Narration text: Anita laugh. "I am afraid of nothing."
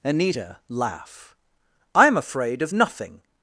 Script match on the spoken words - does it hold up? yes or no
yes